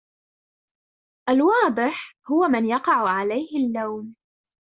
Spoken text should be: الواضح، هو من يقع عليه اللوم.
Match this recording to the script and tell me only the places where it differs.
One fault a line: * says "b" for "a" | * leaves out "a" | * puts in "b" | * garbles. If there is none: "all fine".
all fine